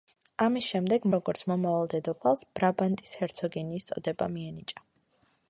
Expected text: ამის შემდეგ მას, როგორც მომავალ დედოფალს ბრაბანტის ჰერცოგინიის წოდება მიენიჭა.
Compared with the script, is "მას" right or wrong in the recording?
wrong